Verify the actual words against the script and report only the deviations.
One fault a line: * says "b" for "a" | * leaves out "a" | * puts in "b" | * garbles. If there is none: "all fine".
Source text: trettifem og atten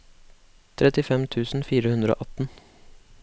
* puts in "tusen fire hundre"